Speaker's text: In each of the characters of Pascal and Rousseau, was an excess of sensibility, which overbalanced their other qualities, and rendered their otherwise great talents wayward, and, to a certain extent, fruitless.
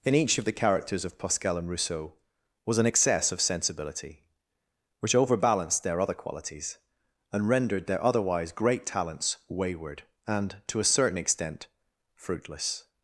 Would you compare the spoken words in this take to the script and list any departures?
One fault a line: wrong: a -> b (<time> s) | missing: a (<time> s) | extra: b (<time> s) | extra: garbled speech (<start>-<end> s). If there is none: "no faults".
no faults